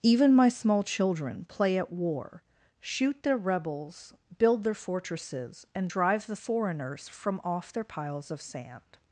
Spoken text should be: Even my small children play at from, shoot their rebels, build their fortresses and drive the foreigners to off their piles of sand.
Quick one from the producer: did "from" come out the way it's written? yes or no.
no